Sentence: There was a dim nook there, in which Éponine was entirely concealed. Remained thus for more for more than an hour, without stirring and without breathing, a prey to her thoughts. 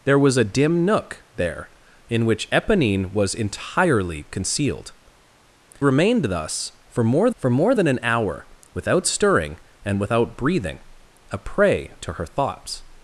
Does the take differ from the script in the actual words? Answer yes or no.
no